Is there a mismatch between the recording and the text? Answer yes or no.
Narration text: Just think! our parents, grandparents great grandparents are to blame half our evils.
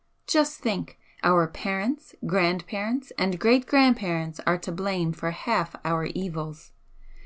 yes